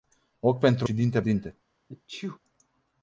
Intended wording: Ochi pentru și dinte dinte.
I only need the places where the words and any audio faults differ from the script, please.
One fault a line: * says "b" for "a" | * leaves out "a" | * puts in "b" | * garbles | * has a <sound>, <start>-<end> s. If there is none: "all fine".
* has a sneeze, 1.9-2.4 s